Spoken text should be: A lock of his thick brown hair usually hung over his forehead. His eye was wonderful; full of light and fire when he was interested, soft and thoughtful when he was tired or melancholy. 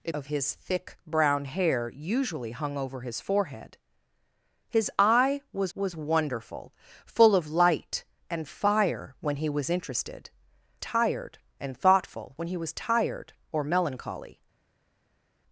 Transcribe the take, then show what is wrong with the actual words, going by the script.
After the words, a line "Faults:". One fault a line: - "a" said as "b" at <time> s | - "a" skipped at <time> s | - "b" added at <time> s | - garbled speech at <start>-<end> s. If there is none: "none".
A of his thick brown hair usually hung over his forehead. His eye was was wonderful; full of light and fire when he was interested, tired and thoughtful when he was tired or melancholy.
Faults:
- "lock" skipped at 0.1 s
- "was" added at 5.7 s
- "soft" said as "tired" at 10.8 s